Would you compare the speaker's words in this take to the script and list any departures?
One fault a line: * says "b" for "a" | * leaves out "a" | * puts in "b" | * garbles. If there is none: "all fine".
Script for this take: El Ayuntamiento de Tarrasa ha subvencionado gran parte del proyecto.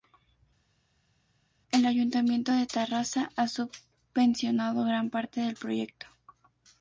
all fine